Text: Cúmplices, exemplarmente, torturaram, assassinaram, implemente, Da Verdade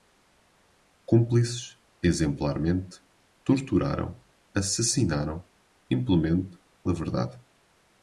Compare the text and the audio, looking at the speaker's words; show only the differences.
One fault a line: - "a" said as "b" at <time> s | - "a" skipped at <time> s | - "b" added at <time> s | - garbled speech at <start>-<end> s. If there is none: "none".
none